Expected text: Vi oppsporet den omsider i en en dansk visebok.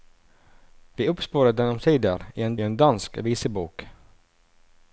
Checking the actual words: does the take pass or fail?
pass